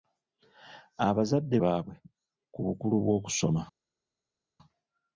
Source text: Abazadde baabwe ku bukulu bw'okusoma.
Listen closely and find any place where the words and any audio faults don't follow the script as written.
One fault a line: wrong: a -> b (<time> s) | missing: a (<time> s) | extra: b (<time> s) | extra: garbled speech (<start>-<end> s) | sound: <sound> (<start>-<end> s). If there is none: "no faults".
no faults